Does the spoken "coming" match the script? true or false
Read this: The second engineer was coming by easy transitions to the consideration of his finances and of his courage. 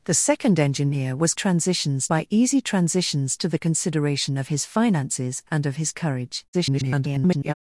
false